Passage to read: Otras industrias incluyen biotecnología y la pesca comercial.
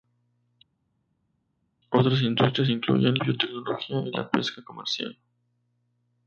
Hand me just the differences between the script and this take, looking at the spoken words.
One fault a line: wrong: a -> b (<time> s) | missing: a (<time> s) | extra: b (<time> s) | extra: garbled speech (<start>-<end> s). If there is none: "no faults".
no faults